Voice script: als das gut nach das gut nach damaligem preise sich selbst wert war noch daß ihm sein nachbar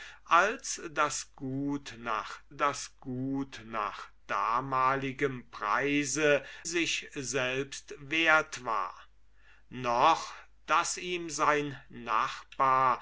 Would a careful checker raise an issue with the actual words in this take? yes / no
no